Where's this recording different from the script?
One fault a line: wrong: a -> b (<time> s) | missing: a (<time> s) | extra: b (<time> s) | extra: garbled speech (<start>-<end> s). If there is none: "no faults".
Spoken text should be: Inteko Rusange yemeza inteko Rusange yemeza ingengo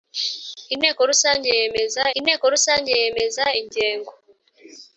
no faults